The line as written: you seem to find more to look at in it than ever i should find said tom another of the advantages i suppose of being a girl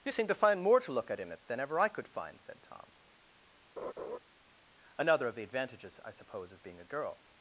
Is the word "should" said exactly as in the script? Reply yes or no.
no